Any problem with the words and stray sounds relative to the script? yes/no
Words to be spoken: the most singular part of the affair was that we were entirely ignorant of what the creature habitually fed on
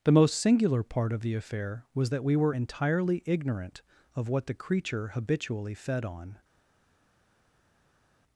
no